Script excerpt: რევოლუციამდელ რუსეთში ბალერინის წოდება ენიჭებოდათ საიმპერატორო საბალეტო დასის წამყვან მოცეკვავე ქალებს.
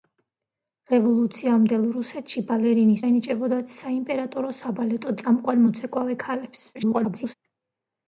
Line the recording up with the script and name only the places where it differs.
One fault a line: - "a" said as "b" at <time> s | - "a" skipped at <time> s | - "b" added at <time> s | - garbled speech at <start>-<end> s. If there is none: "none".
- "წოდება" skipped at 3.0 s
- "დასის" skipped at 5.1 s
- garbled speech at 6.7-7.3 s